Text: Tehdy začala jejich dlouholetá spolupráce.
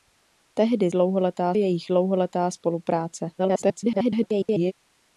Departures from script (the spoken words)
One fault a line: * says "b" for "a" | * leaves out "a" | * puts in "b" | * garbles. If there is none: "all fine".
* says "dlouholetá" for "začala"
* garbles